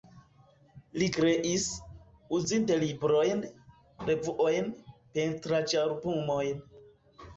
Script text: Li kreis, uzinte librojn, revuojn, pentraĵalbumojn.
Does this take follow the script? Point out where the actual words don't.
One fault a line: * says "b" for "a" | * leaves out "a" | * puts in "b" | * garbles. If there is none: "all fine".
all fine